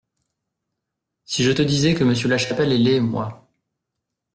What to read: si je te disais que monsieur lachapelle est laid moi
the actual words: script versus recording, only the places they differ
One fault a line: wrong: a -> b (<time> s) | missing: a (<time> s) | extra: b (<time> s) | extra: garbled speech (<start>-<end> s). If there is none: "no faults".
no faults